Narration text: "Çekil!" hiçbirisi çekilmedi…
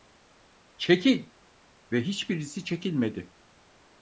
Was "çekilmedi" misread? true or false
false